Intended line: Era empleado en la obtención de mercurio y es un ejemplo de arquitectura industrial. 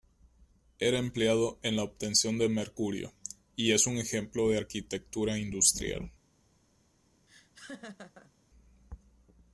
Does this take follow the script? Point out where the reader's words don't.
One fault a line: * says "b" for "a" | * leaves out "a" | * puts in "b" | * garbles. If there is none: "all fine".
all fine